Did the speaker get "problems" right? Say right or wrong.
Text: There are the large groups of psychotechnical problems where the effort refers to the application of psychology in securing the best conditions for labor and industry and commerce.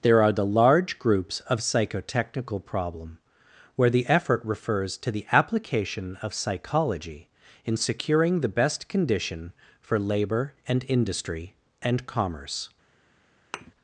wrong